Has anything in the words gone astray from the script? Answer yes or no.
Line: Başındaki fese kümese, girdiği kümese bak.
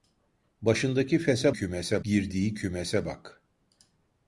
no